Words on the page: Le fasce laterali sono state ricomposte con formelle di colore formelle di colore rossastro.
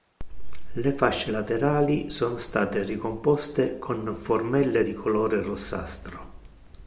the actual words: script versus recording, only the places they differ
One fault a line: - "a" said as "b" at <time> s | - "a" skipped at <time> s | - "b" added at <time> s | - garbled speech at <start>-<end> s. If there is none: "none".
- "formelle di colore" skipped at 5.4 s